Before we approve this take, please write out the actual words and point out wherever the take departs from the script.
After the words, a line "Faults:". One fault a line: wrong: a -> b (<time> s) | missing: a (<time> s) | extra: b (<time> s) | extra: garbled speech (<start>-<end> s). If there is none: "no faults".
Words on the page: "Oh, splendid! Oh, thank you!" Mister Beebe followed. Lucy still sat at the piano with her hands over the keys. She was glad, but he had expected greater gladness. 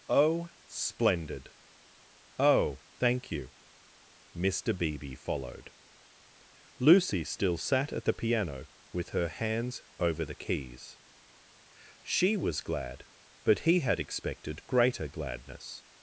"Oh, splendid! Oh, thank you!" Mister Beebe followed. Lucy still sat at the piano with her hands over the keys. She was glad, but he had expected greater gladness.
Faults:
no faults